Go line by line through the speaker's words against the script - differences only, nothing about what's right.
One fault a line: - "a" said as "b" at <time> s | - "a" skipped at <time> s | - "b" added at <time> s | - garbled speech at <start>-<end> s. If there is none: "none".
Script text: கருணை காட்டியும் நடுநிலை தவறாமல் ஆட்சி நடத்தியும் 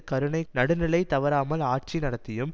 - "காட்டியும்" skipped at 0.4 s